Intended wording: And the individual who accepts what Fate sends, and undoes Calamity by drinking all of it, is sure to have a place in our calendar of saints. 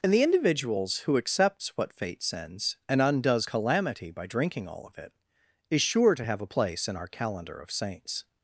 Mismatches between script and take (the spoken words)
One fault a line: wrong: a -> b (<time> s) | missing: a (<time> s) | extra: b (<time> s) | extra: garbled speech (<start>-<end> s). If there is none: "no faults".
wrong: individual -> individuals (0.2 s)